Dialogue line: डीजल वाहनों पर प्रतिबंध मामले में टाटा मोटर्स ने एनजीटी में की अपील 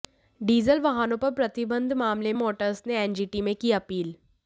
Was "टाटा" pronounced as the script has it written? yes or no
no